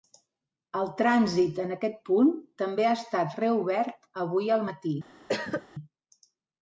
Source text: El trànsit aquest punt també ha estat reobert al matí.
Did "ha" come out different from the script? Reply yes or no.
no